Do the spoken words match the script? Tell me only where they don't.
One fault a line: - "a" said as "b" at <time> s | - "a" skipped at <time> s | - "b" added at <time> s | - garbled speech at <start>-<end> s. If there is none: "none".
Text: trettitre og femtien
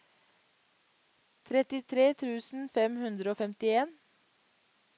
- "tusen fem hundre" added at 2.2 s